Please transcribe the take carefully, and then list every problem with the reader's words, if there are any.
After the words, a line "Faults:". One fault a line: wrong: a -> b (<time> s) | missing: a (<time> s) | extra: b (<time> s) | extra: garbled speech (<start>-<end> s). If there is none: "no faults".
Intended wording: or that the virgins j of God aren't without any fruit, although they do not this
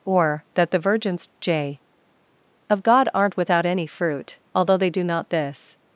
or that the virgins j of God aren't without any fruit, although they do not this
Faults:
no faults